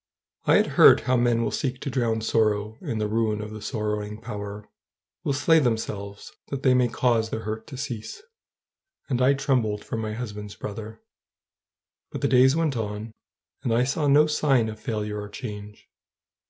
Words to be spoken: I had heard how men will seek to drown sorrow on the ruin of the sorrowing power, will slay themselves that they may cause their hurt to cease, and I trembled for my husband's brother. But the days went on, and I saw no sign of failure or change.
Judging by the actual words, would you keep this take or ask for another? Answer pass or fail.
fail